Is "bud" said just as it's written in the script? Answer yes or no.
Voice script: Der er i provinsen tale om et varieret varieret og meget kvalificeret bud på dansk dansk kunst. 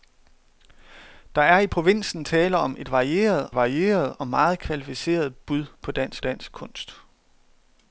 yes